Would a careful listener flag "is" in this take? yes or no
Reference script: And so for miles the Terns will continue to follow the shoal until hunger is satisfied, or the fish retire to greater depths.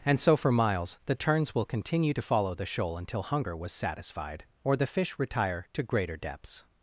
yes